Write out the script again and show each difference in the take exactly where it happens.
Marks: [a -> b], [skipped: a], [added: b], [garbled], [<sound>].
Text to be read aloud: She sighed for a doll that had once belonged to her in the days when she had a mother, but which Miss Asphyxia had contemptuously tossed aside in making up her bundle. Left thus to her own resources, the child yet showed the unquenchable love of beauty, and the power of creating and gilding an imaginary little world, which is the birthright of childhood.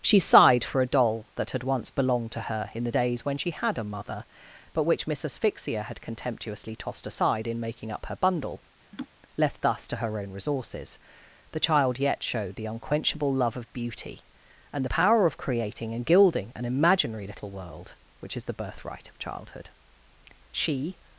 She sighed for a doll that had once belonged to her in the days when she had a mother, but which Miss Asphyxia had contemptuously tossed aside in making up her bundle. [laugh] Left thus to her own resources, the child yet showed the unquenchable love of beauty, and the power of creating and gilding an imaginary little world, which is the birthright of childhood. [added: She]